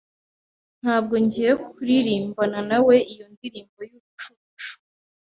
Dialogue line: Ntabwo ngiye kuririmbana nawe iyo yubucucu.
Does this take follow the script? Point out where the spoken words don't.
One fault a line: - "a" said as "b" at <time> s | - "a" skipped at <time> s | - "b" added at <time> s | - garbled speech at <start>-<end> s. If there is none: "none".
- "ndirimbo" added at 3.3 s